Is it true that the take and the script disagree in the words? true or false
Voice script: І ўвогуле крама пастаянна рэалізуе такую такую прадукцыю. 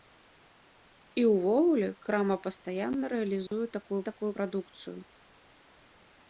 false